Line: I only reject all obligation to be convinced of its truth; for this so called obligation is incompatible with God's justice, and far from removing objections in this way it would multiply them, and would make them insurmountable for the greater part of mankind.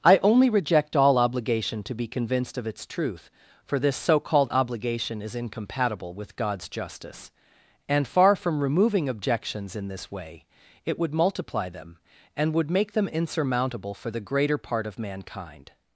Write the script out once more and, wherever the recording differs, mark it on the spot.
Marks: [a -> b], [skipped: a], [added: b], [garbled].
I only reject all obligation to be convinced of its truth; for this so called obligation is incompatible with God's justice, and far from removing objections in this way it would multiply them, and would make them insurmountable for the greater part of mankind.